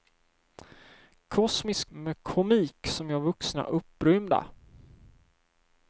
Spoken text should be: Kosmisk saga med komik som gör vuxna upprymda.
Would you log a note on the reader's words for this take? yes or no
yes